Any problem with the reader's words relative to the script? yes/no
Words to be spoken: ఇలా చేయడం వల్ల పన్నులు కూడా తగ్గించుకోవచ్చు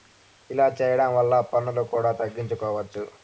no